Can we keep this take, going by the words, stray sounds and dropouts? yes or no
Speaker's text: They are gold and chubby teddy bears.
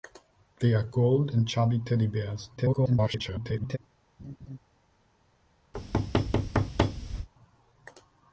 no